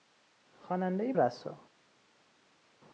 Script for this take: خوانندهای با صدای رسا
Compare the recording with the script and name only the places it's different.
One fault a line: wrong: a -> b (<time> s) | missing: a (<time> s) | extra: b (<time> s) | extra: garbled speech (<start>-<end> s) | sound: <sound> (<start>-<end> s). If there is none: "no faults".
missing: با صدای (1.1 s)